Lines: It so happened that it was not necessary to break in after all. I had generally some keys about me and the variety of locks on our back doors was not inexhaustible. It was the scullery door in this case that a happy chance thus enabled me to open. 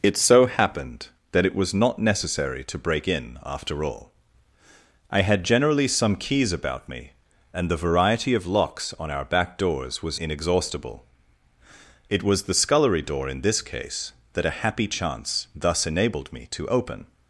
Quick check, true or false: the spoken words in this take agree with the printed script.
false